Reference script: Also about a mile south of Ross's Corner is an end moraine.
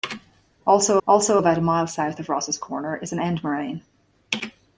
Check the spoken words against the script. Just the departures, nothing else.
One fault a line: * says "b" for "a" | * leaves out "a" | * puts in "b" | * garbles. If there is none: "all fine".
* puts in "also"